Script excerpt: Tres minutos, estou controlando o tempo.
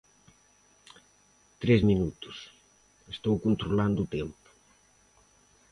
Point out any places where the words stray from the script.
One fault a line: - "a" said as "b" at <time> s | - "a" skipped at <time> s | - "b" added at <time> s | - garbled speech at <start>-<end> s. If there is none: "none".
none